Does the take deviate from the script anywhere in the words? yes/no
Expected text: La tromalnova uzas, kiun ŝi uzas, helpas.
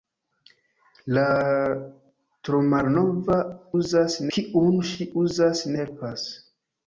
no